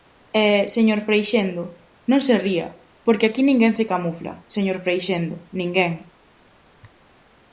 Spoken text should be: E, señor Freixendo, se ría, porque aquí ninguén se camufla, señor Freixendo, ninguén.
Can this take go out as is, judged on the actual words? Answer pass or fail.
fail